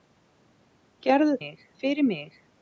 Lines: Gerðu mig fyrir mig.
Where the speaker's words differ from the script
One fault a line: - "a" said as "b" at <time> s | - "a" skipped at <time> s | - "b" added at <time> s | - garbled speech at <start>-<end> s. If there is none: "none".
none